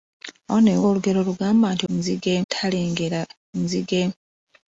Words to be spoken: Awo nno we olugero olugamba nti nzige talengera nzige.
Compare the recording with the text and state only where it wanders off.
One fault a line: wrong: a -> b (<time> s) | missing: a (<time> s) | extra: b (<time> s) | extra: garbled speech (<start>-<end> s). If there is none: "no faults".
no faults